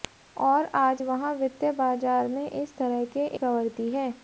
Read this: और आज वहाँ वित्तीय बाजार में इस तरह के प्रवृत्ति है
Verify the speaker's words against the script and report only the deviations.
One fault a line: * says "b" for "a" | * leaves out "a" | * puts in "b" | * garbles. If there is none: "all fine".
all fine